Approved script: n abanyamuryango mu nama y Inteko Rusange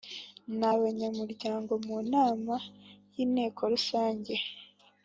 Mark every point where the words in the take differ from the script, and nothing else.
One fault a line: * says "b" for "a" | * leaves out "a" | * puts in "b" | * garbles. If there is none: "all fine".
all fine